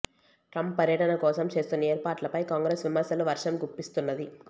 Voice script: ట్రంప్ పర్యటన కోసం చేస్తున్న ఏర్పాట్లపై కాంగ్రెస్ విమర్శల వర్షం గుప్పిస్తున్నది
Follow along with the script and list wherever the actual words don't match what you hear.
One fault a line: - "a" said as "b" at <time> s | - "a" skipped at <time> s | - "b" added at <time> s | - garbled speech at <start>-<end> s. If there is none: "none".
none